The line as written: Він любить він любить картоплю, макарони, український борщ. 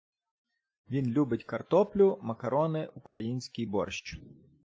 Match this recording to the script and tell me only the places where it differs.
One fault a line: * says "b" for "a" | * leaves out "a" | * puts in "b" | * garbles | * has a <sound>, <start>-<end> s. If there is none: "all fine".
* leaves out "він любить"
* has a dropout, 3.1-3.2 s